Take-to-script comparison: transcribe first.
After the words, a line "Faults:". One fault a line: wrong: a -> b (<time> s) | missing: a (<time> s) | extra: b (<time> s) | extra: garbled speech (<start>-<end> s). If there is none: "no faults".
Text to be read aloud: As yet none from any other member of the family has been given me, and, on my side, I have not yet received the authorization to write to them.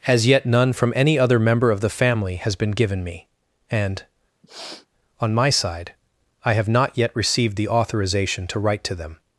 As yet none from any other member of the family has been given me, and, on my side, I have not yet received the authorization to write to them.
Faults:
no faults